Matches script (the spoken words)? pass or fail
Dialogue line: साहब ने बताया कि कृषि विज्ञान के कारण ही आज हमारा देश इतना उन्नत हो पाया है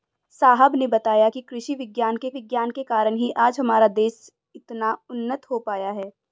fail